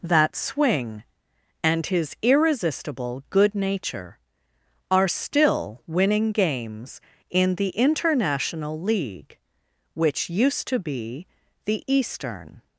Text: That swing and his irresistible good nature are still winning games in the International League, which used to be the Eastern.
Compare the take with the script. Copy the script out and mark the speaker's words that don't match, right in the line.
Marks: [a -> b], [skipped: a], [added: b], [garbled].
That swing and his irresistible good nature are still winning games in the International League, which used to be the Eastern.